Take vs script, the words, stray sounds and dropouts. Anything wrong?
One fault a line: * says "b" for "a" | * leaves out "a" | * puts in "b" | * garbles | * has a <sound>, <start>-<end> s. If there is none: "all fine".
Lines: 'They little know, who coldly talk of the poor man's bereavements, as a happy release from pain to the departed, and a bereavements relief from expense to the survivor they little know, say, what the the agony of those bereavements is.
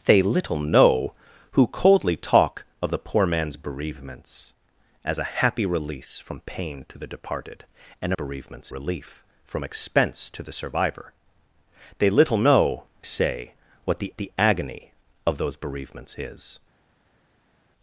all fine